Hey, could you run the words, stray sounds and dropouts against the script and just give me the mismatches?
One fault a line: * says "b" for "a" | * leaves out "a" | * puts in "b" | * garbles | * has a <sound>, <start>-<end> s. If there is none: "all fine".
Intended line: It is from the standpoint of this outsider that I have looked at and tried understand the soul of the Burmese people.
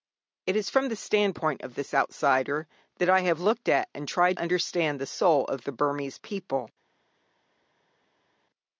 all fine